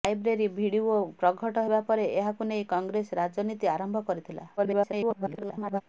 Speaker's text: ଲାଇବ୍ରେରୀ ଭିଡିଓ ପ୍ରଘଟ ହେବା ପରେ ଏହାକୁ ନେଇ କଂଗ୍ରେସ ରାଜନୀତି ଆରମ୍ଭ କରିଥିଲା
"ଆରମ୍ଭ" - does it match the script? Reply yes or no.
yes